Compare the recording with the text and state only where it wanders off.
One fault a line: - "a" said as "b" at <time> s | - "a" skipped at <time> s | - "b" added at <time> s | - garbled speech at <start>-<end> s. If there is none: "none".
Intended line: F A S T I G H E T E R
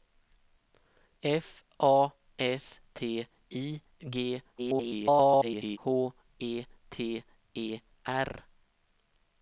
- garbled speech at 4.6-5.8 s